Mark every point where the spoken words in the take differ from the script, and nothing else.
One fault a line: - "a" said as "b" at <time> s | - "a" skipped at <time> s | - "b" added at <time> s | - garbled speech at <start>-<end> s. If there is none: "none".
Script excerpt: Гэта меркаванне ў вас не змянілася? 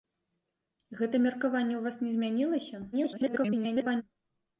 - garbled speech at 2.9-4.0 s